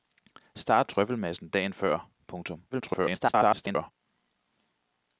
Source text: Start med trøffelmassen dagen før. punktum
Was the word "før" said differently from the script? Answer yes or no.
no